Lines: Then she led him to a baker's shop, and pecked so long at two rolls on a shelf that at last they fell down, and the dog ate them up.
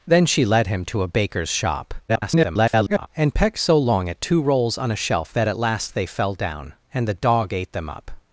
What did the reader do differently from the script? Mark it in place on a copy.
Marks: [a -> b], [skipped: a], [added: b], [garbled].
Then she led him to a baker's shop, [garbled] and pecked so long at two rolls on a shelf that at last they fell down, and the dog ate them up.